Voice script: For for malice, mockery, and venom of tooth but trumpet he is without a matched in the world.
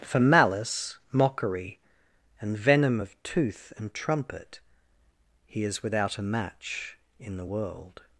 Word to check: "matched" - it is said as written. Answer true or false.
false